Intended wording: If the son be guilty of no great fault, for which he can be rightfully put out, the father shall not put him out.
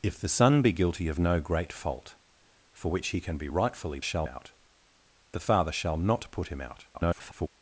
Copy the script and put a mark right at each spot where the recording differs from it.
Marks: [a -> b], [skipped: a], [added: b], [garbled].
If the son be guilty of no great fault, for which he can be rightfully [put -> shall] out, the father shall not put him out. [garbled]